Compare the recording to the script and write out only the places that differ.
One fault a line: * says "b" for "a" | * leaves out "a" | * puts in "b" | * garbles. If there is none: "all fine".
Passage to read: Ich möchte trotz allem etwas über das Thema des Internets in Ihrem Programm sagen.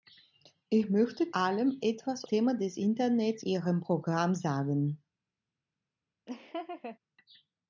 * leaves out "trotz"
* leaves out "über das"
* leaves out "in"